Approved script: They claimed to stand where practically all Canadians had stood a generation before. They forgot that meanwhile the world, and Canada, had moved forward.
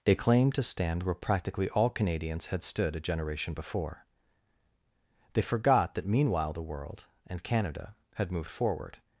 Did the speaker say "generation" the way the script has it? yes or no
yes